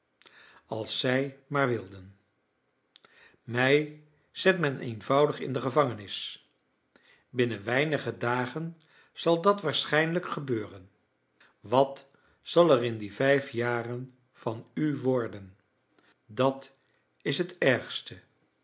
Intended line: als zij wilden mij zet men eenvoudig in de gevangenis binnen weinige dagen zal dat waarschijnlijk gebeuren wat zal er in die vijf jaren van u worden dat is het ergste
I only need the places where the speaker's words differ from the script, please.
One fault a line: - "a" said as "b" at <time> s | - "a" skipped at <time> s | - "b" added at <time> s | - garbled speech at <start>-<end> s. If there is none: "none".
- "maar" added at 1.5 s